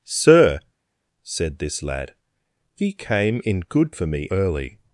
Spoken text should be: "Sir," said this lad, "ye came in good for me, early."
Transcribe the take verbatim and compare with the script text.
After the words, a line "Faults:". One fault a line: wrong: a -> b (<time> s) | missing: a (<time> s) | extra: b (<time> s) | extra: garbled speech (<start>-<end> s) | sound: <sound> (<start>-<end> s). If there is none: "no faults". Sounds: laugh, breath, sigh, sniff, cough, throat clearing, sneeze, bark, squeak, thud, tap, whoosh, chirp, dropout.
"Sir," said this lad, "ye came in good for me, early."
Faults:
no faults